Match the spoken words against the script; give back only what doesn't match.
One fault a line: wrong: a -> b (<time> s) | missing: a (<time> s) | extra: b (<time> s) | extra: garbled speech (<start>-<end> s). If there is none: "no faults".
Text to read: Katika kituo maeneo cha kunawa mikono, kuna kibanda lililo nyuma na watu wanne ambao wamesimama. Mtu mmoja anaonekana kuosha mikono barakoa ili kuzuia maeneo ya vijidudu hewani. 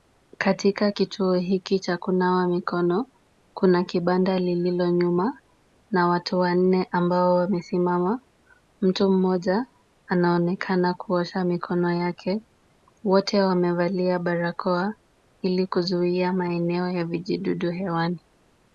wrong: maeneo -> hiki (1.3 s)
extra: yake Wote wamevalia (11.9 s)